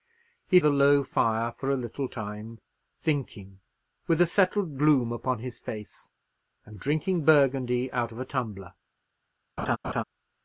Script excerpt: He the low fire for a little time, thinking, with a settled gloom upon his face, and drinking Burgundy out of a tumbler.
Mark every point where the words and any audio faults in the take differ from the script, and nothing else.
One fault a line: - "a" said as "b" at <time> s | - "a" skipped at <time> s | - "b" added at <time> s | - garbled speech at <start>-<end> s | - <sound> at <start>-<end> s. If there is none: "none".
- laugh at 9.6-10.0 s